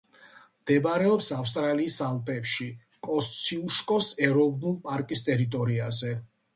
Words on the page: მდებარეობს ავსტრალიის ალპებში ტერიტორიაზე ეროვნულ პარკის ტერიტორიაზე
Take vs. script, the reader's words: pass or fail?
fail